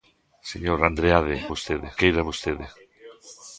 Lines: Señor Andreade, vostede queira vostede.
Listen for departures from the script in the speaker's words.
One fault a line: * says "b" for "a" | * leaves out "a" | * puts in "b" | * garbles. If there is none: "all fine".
all fine